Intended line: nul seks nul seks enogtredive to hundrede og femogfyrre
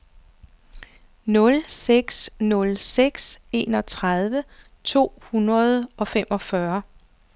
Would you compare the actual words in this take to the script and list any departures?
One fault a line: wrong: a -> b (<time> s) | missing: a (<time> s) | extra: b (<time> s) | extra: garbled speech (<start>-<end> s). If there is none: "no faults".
no faults